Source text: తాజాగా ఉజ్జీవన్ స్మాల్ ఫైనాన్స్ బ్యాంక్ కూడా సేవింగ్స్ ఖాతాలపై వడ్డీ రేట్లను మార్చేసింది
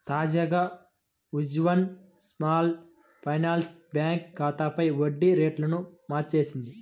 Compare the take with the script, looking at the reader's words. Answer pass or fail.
fail